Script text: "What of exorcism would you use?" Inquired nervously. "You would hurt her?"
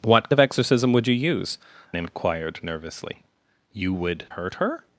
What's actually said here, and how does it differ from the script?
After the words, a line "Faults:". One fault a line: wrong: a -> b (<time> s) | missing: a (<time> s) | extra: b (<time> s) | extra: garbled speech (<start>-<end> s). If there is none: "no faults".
"What of exorcism would you use?" Inquired nervously. "You would hurt her?"
Faults:
no faults